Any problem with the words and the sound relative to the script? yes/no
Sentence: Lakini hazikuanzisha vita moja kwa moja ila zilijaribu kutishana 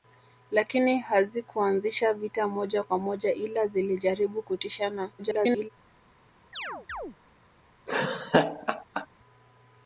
yes